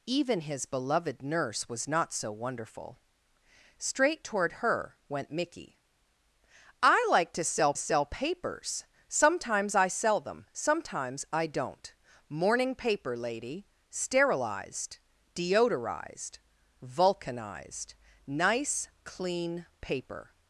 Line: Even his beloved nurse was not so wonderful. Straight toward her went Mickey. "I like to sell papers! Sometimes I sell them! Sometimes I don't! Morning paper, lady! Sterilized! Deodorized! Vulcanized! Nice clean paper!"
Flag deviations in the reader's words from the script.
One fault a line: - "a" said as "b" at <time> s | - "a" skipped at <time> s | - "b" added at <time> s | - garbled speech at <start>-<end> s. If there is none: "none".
- "sell" added at 7.7 s